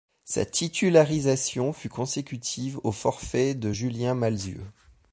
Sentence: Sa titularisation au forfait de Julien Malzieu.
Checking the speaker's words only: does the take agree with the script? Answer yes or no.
no